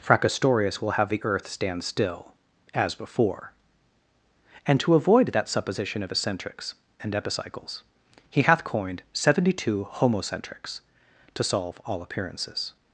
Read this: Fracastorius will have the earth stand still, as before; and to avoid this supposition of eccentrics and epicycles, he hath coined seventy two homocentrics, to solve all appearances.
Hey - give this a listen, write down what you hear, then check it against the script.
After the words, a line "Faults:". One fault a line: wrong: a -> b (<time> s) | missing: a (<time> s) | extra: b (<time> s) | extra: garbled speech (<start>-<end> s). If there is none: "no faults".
Fracastorius will have the earth stand still, as before; and to avoid that supposition of eccentrics and epicycles, he hath coined seventy two homocentrics, to solve all appearances.
Faults:
wrong: this -> that (5.3 s)